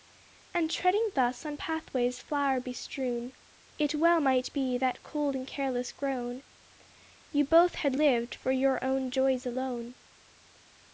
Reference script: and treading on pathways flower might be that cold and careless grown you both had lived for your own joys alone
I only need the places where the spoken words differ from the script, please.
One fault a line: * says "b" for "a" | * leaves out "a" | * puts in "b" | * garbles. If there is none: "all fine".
* puts in "thus"
* puts in "bestrewn it well"